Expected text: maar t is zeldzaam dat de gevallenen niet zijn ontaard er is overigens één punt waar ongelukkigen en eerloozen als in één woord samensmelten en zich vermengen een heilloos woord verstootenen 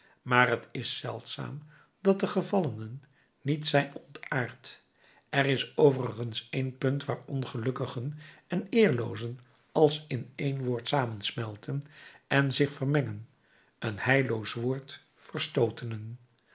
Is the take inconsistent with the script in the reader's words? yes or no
no